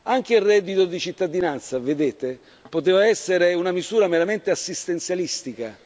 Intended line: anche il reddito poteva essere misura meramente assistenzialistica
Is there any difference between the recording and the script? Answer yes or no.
yes